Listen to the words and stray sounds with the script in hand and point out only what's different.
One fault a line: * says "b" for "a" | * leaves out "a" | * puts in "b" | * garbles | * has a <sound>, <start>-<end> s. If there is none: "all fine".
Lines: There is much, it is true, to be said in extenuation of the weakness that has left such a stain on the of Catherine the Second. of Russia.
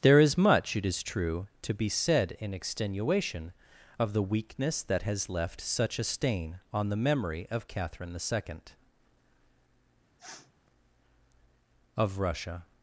* puts in "memory"
* has a sniff, 10.2-10.5 s